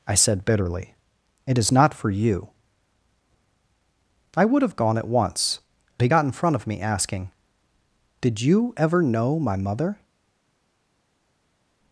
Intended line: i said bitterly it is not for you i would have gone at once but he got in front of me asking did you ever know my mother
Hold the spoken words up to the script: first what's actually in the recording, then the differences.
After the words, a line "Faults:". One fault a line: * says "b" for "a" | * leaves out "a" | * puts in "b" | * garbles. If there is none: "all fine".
i said bitterly it is not for you i would have gone at once he got in front of me asking did you ever know my mother
Faults:
* leaves out "but"